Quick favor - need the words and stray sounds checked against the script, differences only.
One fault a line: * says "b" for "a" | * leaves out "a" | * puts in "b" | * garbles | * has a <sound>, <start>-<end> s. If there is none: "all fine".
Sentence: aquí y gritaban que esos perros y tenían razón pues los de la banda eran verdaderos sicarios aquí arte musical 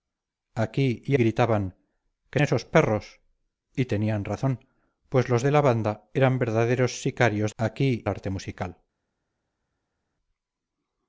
all fine